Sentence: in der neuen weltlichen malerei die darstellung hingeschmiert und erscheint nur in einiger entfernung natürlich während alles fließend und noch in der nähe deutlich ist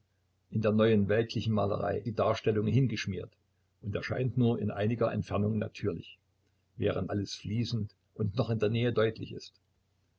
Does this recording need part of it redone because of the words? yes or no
no